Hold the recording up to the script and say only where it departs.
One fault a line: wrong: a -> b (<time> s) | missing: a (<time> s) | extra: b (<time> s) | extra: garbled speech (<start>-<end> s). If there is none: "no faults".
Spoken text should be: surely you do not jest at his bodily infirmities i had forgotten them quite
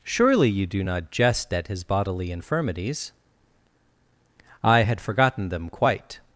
no faults